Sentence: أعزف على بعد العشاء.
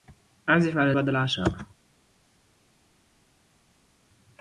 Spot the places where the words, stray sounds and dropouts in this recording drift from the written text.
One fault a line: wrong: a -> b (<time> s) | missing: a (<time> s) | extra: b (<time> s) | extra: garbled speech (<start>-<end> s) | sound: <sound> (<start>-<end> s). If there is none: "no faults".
no faults